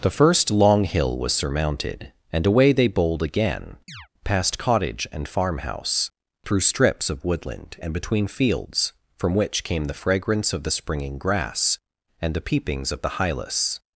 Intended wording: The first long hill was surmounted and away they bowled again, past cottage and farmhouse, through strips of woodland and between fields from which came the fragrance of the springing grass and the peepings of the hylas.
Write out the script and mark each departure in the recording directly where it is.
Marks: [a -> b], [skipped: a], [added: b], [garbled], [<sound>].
The first long hill was surmounted and away they bowled again, [chirp] past cottage and farmhouse, through strips of woodland and between fields from which came the fragrance of the springing grass and the peepings of the hylas.